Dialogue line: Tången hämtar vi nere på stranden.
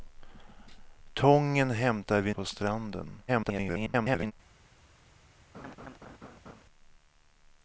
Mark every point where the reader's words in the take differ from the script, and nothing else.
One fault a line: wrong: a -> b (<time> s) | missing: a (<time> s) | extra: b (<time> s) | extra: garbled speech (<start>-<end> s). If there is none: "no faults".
missing: nere (2.3 s)
extra: garbled speech (3.3-4.3 s)